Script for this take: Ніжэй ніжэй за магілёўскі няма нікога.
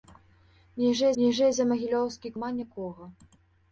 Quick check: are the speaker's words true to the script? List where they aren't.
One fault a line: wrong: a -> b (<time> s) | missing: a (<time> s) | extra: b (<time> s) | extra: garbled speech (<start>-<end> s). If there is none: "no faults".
no faults